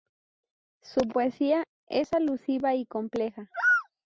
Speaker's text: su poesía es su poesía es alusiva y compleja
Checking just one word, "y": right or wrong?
right